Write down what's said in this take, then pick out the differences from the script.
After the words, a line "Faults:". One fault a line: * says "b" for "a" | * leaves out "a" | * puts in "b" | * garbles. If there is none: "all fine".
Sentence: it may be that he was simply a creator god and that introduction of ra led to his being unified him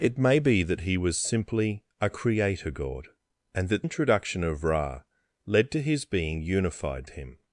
it may be that he was simply a creator god and that introduction of ra led to his being unified him
Faults:
all fine